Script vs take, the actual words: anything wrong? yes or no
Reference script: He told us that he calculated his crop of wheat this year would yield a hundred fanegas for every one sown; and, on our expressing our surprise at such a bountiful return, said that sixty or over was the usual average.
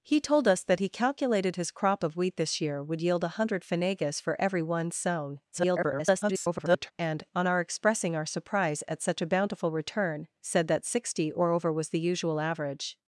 yes